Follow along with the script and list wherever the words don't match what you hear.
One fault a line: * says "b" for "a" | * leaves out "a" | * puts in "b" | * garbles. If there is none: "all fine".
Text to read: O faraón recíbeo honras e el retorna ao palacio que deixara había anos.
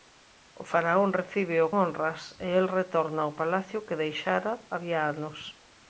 all fine